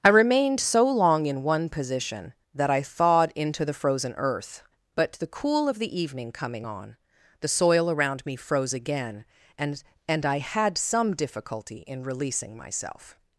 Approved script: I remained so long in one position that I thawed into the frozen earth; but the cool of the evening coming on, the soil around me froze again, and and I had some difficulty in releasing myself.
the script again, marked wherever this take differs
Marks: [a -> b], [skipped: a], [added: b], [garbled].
I remained so long in one position that I thawed into the frozen earth; but the cool of the evening coming on, the soil around me froze again, and and I had some difficulty in releasing myself.